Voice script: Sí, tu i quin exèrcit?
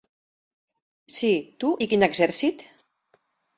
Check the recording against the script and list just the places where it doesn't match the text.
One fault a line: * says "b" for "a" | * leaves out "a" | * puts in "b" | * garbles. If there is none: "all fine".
all fine